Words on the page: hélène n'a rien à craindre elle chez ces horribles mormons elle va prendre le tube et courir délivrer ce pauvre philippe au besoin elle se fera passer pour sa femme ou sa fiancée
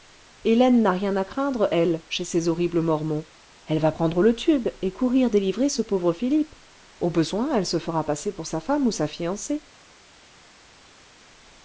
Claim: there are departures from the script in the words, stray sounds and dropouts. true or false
false